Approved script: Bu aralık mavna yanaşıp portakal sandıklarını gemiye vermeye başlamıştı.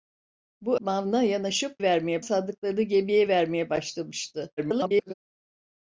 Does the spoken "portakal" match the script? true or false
false